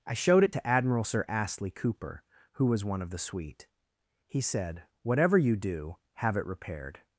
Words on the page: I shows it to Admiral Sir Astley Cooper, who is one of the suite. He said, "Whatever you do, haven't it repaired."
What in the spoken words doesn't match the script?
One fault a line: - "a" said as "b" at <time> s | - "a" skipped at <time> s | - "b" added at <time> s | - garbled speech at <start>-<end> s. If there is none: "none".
- "shows" said as "showed" at 0.1 s
- "is" said as "was" at 2.6 s
- "haven't" said as "have" at 6.1 s